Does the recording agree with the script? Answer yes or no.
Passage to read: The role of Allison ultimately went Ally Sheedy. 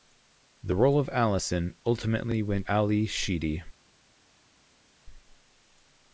yes